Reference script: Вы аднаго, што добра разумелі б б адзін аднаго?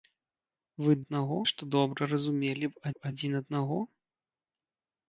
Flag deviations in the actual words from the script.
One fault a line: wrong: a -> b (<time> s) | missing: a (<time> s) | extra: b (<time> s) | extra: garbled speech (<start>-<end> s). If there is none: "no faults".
no faults